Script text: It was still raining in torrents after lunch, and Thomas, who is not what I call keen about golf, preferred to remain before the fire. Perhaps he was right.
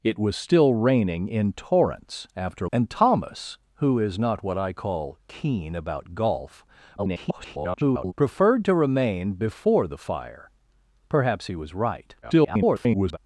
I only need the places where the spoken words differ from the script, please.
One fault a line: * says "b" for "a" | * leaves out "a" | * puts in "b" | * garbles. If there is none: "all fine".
* leaves out "lunch"
* garbles
* garbles